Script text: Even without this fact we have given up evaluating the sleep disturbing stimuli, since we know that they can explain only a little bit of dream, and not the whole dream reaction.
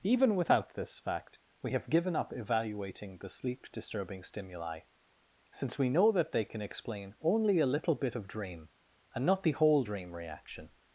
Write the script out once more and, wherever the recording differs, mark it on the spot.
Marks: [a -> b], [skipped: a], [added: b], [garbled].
Even without this fact we have given up evaluating the sleep disturbing stimuli, since we know that they can explain only a little bit of dream, and not the whole dream reaction.